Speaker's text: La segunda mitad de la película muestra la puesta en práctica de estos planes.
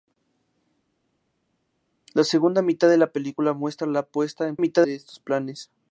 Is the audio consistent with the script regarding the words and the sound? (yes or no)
no